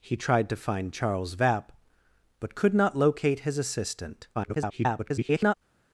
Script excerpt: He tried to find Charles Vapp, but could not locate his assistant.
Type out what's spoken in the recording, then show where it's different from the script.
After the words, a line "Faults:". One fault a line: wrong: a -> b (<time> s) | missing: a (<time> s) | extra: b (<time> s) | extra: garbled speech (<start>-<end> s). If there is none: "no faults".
He tried to find Charles Vapp, but could not locate his assistant. [garbled]
Faults:
extra: garbled speech (4.3-5.5 s)